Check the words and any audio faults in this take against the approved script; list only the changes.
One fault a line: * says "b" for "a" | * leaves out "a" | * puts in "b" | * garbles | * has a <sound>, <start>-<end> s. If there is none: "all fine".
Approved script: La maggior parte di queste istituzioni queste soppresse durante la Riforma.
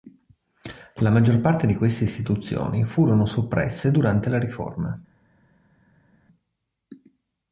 * says "furono" for "queste"